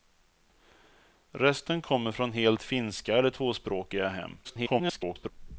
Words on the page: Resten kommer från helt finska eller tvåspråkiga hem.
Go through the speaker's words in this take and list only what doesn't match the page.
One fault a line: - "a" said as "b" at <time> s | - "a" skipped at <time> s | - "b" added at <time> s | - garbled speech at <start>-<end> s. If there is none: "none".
- garbled speech at 4.4-5.3 s